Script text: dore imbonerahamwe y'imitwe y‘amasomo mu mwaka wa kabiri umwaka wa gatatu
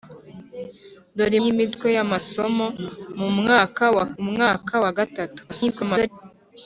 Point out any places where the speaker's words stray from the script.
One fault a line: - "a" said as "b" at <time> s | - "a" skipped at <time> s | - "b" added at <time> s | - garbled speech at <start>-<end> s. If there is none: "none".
- "imbonerahamwe" skipped at 1.4 s
- "kabiri" skipped at 4.1 s
- garbled speech at 5.5-6.1 s